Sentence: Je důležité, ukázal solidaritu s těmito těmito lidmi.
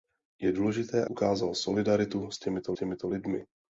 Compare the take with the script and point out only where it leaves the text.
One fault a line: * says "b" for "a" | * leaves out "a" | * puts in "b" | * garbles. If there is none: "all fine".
all fine